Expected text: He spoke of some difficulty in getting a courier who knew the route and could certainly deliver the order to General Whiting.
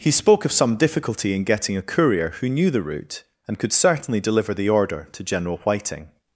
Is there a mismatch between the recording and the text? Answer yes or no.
no